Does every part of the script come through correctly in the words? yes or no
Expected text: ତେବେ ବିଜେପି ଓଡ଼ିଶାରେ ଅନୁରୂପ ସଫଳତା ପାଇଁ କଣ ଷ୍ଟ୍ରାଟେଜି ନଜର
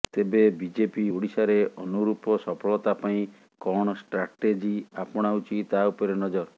no